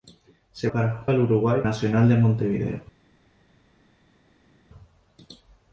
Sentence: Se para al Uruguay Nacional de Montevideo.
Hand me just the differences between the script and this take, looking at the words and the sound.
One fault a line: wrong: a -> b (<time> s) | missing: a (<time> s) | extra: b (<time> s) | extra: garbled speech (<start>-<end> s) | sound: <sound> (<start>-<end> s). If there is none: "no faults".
no faults